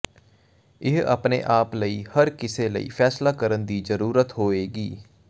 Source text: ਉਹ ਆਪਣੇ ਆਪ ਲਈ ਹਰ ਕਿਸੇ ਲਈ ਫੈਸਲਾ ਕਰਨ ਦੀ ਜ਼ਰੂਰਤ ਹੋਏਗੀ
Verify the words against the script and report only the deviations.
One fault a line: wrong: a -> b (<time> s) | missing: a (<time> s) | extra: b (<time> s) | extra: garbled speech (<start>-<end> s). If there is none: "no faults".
wrong: ਉਹ -> ਇਹ (0.8 s)